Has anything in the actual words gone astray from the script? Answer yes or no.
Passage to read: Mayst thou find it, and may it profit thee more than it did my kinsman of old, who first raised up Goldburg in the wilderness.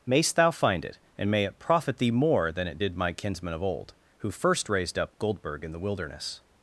no